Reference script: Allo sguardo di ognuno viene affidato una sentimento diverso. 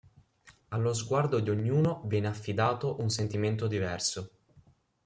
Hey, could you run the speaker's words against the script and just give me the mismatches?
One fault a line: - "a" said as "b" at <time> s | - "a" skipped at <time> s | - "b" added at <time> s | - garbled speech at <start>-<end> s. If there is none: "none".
- "una" said as "un" at 3.0 s